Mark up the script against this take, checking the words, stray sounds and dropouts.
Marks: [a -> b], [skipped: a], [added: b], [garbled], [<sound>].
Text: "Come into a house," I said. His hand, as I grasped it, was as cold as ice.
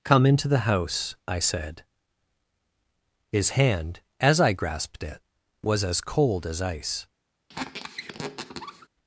"Come into [a -> the] house," I said. His hand, as I grasped it, was as cold as ice. [squeak]